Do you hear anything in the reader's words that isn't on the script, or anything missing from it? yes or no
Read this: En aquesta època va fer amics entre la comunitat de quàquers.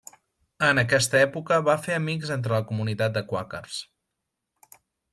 no